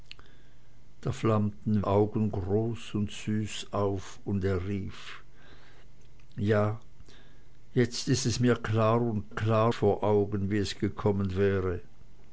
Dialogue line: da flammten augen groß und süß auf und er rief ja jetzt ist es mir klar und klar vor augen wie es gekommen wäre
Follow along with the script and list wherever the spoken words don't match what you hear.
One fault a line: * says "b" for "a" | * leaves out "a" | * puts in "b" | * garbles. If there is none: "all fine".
all fine